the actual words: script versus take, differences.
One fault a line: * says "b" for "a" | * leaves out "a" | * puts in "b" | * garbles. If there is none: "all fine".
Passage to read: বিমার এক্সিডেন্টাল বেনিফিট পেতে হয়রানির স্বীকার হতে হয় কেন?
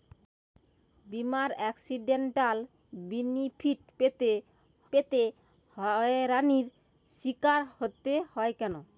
* puts in "পেতে"